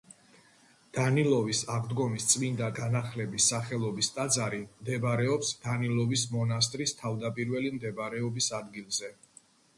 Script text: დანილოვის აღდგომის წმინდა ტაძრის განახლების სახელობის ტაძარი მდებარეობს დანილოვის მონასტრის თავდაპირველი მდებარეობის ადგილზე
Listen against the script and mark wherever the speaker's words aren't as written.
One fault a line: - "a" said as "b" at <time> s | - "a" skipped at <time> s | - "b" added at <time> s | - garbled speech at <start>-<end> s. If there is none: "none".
- "ტაძრის" skipped at 2.7 s